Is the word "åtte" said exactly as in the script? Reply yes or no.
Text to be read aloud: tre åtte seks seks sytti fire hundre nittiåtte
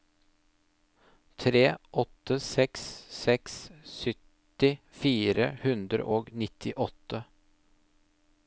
yes